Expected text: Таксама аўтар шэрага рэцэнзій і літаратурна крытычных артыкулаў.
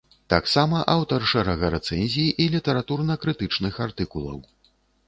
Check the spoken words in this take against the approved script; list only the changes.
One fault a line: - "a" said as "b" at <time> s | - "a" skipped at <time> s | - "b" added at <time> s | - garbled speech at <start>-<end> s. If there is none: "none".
none